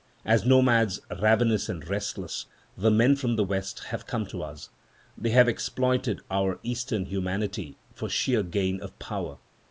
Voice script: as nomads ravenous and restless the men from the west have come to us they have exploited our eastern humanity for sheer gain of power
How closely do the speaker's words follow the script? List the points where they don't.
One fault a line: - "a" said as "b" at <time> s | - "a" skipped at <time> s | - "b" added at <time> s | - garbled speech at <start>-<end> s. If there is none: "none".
none